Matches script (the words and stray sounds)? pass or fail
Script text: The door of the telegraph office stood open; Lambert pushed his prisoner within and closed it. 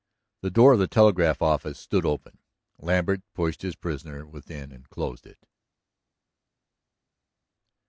pass